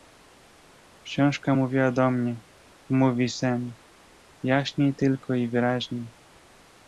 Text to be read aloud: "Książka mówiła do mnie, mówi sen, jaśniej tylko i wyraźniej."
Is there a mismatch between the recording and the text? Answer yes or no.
no